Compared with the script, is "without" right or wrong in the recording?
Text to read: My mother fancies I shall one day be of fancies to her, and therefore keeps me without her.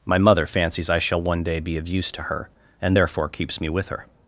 wrong